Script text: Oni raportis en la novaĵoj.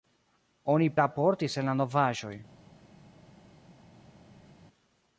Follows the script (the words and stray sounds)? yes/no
yes